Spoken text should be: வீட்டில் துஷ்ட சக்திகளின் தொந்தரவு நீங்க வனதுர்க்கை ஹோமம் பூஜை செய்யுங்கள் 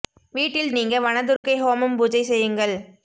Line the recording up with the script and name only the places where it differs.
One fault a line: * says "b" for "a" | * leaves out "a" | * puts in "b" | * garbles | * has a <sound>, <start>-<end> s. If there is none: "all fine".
* leaves out "துஷ்ட சக்திகளின் தொந்தரவு"
* has a dropout, 1.4-1.4 s